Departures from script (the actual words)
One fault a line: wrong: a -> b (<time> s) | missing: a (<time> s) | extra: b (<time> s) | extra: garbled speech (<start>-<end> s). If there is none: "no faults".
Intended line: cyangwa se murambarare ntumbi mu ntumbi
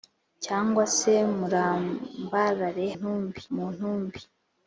no faults